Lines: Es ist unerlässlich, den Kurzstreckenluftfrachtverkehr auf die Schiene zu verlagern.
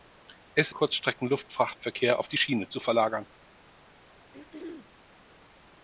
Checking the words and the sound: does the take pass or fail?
fail